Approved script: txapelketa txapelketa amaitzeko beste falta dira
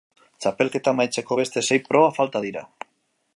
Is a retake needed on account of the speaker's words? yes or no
yes